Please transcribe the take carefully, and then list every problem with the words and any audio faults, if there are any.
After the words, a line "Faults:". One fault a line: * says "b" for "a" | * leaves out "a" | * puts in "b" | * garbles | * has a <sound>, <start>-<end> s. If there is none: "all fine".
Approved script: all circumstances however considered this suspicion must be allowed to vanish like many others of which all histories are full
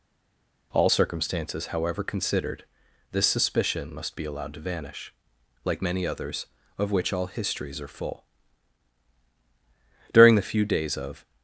all circumstances however considered this suspicion must be allowed to vanish like many others of which all histories are full during the few days of
Faults:
* puts in "during the few days of"